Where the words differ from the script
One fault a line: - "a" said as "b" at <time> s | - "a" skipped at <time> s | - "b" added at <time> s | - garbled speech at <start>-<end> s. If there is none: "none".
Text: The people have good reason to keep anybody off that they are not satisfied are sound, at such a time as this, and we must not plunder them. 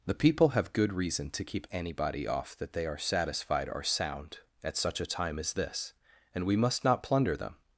- "not" skipped at 3.0 s